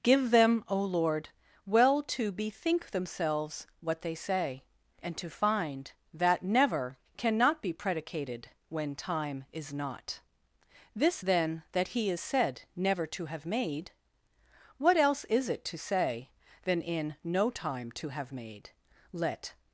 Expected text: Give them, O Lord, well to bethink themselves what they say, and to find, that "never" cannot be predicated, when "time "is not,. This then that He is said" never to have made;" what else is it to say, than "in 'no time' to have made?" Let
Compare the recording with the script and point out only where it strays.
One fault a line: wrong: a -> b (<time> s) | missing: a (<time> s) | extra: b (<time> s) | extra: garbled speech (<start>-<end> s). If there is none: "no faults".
no faults